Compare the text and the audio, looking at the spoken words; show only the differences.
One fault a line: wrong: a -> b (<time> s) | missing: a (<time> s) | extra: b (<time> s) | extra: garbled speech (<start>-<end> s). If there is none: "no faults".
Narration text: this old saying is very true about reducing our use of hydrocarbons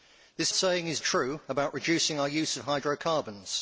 missing: old (0.5 s)
missing: very (1.0 s)